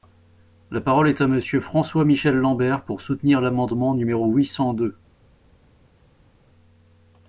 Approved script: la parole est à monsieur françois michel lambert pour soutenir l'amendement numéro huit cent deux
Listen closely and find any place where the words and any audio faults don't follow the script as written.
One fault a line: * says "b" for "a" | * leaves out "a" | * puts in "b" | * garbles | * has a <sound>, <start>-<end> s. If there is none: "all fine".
all fine